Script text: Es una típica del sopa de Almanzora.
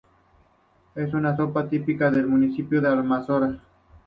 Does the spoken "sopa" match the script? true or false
false